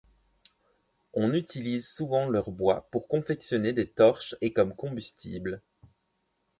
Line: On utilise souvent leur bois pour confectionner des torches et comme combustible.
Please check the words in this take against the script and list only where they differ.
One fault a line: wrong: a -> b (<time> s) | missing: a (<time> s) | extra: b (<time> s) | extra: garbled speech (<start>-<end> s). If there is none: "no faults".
no faults